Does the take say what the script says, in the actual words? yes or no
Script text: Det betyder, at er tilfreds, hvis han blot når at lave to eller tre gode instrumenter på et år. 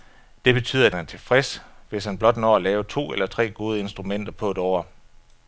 yes